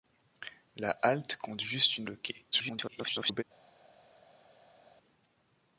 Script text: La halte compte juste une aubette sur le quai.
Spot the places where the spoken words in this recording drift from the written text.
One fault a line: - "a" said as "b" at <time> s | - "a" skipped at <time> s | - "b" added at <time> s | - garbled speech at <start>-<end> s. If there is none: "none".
- "aubette sur" skipped at 2.1 s
- garbled speech at 2.5-3.4 s